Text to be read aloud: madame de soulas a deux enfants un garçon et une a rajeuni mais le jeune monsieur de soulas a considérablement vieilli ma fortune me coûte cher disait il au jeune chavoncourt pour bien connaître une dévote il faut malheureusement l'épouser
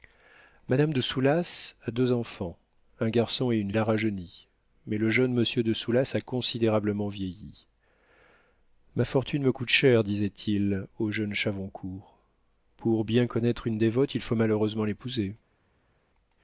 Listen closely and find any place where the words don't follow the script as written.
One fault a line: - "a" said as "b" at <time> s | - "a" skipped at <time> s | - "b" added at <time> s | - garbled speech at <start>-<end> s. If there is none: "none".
none